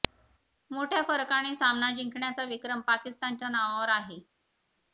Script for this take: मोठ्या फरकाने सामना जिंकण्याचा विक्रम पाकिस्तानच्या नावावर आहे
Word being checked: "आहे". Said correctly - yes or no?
yes